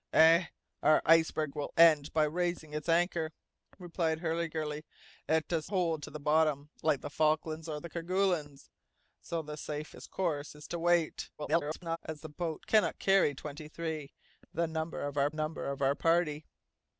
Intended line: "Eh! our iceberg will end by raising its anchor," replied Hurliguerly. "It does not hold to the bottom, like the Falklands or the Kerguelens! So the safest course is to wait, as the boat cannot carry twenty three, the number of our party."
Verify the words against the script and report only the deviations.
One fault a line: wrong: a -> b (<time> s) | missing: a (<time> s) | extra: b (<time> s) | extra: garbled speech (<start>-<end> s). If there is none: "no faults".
missing: not (5.7 s)
extra: garbled speech (11.4-12.0 s)
extra: number of our (15.3 s)